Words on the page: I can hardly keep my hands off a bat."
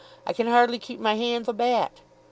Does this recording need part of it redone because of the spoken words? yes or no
yes